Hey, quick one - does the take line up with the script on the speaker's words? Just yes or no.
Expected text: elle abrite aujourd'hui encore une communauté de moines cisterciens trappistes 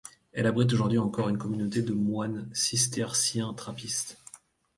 yes